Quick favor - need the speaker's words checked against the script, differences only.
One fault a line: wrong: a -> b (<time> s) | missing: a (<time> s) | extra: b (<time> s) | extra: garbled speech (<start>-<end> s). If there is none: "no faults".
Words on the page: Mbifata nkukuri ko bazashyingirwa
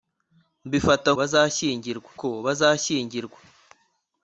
wrong: nkukuri -> bazashyingirwa (1.2 s)